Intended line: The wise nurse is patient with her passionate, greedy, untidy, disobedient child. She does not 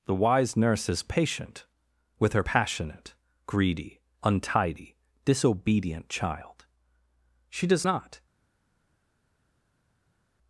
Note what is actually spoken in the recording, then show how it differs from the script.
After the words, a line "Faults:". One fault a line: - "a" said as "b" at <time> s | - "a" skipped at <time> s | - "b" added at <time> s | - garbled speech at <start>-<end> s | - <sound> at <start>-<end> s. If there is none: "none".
The wise nurse is patient with her passionate, greedy, untidy, disobedient child. She does not
Faults:
none